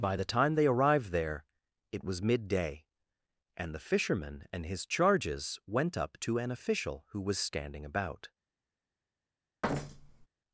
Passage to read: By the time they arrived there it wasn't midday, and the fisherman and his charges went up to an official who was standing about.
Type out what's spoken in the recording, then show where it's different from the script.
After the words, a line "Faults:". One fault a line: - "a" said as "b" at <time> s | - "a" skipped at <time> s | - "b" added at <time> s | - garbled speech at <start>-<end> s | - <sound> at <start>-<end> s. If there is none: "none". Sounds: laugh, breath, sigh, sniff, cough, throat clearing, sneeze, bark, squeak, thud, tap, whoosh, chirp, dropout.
By the time they arrived there it was midday, and the fisherman and his charges went up to an official who was standing about.
Faults:
- "wasn't" said as "was" at 2.1 s
- thud at 9.6-10.3 s